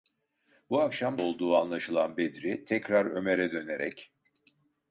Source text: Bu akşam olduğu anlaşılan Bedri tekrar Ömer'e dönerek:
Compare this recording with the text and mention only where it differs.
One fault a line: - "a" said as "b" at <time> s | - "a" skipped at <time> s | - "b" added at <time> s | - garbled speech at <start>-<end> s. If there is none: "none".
none